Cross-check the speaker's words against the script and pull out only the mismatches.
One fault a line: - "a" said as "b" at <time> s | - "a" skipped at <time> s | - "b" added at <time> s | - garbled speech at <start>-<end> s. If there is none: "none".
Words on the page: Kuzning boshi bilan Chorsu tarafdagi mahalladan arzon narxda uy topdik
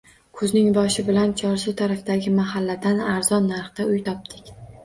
none